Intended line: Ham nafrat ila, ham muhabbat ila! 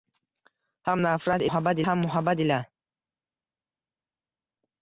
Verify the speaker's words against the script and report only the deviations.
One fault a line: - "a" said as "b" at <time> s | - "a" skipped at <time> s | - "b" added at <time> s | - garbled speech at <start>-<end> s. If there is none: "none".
- "ila" said as "muhabbat" at 1.5 s